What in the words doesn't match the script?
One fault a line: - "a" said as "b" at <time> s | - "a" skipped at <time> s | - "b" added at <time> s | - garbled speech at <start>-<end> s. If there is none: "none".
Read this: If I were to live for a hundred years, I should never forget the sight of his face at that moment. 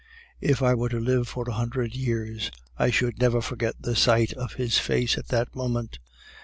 none